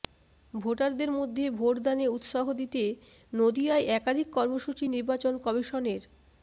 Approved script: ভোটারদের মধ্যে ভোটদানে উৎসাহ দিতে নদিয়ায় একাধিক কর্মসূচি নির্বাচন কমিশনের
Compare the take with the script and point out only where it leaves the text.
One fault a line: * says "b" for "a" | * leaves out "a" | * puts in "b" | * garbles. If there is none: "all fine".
all fine